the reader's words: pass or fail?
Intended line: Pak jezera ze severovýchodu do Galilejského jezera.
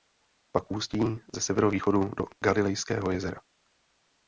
fail